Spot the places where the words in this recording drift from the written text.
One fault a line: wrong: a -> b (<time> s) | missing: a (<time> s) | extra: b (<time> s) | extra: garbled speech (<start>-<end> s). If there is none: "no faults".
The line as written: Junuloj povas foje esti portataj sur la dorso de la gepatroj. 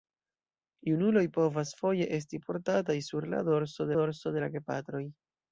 extra: dorso (4.0 s)